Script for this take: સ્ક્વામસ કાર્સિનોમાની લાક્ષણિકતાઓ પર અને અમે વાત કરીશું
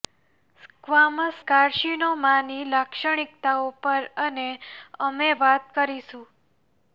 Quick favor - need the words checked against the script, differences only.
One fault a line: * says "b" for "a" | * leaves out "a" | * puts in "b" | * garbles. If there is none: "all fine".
all fine